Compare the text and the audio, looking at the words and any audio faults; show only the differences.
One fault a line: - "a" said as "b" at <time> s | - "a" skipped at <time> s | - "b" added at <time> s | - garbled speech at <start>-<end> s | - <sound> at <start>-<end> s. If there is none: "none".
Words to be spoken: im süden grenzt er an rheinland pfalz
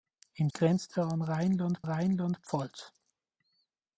- "süden" skipped at 0.5 s
- "rheinland" added at 1.8 s